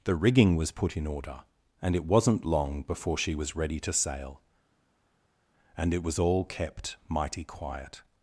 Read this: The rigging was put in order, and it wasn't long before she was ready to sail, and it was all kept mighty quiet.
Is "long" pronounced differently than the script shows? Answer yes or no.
no